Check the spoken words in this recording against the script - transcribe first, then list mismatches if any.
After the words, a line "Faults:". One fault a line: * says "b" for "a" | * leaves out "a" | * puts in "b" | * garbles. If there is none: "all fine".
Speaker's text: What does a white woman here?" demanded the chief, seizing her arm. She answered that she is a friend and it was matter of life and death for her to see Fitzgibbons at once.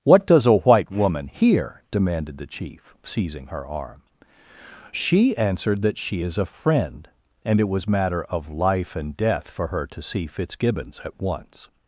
What does a white woman here?" demanded the chief, seizing her arm. She answered that she is a friend and it was matter of life and death for her to see Fitzgibbons at once.
Faults:
all fine